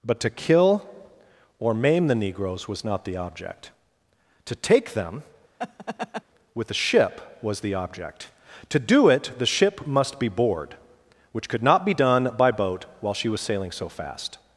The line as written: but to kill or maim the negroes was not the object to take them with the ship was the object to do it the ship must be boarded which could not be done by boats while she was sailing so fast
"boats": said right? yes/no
no